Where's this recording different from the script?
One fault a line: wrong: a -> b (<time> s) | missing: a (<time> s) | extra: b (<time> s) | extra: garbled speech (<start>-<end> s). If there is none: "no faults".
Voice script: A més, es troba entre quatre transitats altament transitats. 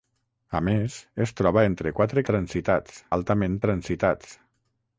no faults